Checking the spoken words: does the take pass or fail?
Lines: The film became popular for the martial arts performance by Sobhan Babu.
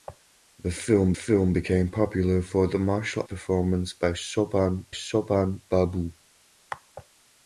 fail